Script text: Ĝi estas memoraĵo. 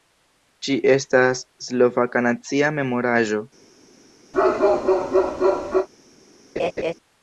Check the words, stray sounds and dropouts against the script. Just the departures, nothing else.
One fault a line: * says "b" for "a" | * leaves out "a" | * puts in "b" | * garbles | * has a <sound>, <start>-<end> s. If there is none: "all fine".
* puts in "slovaka nacia"
* has a bark, 4.3-5.9 s
* has a laugh, 6.6-6.9 s